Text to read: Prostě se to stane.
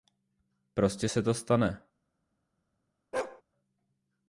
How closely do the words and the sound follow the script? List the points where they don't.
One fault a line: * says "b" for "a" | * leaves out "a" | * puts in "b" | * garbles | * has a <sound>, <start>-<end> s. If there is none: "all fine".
* has a bark, 3.1-3.4 s